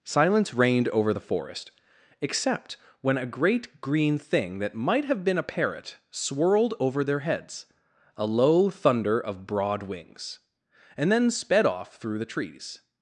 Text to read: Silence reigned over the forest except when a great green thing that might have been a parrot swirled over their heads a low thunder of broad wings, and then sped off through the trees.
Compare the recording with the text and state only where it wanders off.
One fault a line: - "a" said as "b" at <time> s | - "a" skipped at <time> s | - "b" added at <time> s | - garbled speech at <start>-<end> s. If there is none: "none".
none